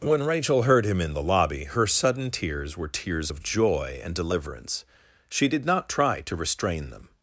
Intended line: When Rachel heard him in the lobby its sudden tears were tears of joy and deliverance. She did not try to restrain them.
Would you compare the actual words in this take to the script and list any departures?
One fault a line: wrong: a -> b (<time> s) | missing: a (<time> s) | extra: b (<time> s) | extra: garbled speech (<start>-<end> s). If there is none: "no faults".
wrong: its -> her (1.6 s)